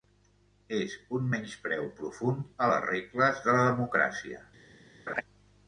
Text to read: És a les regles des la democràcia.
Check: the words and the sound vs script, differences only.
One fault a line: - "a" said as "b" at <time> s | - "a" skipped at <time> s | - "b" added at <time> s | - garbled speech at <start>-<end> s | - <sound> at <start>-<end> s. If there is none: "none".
- "un menyspreu profund" added at 1.2 s
- "des" said as "de" at 3.5 s
- laugh at 5.1-5.2 s